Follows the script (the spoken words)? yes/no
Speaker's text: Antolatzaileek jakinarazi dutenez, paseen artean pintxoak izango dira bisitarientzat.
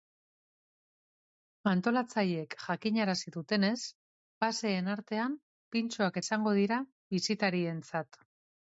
yes